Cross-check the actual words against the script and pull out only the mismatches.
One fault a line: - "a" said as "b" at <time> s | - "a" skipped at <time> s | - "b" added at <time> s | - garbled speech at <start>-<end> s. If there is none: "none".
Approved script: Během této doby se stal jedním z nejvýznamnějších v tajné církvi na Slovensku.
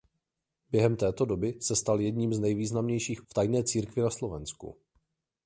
none